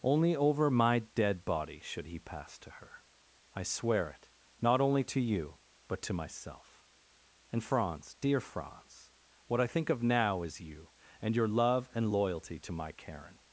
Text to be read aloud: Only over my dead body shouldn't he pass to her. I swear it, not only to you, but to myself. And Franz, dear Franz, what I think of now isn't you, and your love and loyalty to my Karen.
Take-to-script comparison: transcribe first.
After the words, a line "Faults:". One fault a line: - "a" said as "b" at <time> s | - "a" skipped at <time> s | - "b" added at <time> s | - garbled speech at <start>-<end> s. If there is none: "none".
Only over my dead body should he pass to her. I swear it, not only to you, but to myself. And Franz, dear Franz, what I think of now is you, and your love and loyalty to my Karen.
Faults:
- "shouldn't" said as "should" at 1.8 s
- "isn't" said as "is" at 10.4 s